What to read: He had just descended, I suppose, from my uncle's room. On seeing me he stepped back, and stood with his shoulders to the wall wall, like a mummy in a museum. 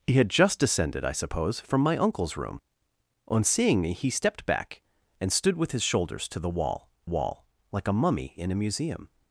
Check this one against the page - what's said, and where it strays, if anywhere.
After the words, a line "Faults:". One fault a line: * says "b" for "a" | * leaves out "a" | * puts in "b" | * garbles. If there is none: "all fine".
He had just descended, I suppose, from my uncle's room. On seeing me he stepped back, and stood with his shoulders to the wall wall, like a mummy in a museum.
Faults:
all fine